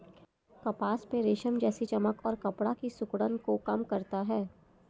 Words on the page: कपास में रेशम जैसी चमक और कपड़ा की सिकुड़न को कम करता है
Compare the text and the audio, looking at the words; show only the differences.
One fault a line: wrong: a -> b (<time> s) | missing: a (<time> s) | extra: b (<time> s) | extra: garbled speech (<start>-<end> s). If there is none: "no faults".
no faults